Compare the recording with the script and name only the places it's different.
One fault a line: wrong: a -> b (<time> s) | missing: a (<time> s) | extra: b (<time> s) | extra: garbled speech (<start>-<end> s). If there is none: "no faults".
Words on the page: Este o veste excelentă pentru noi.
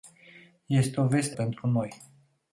missing: excelentă (1.4 s)